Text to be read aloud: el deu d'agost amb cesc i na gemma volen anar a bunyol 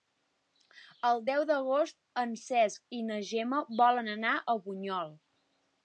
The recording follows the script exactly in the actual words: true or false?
false